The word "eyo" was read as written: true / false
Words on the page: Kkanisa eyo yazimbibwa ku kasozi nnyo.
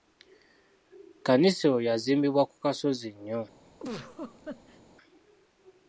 true